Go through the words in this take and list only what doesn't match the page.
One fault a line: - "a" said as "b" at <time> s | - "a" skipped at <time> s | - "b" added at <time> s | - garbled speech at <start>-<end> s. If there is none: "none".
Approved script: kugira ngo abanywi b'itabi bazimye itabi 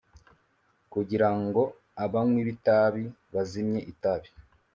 none